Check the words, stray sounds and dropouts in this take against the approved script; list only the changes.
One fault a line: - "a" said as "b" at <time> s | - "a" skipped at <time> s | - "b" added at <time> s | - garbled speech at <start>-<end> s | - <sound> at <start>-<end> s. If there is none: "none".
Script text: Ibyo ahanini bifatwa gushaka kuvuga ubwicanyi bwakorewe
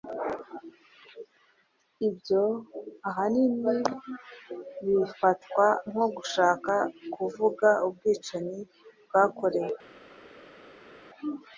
- "nko" added at 5.9 s